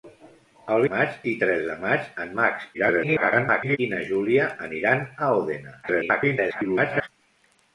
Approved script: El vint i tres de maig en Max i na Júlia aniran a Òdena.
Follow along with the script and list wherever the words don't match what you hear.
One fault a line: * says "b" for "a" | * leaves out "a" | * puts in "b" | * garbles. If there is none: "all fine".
* says "maig" for "vint"
* garbles
* garbles